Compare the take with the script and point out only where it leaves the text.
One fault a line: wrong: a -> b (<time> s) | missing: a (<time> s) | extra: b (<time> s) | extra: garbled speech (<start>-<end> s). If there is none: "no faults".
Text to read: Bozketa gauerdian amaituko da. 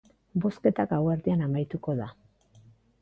no faults